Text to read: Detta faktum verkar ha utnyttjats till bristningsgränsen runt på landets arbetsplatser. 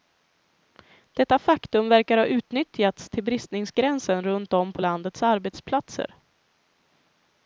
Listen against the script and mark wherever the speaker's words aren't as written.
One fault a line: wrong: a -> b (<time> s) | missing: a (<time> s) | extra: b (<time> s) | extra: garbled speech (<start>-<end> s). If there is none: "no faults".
extra: om (4.5 s)